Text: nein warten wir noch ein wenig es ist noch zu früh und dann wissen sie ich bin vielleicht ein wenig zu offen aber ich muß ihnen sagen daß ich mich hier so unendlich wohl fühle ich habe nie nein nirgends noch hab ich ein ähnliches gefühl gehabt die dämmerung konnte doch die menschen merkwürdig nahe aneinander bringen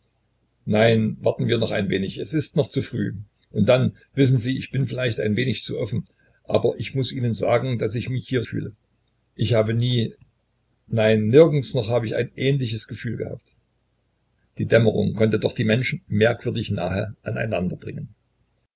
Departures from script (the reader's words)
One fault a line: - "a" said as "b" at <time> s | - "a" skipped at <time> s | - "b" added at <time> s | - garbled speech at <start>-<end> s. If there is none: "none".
- "so unendlich wohl" skipped at 8.4 s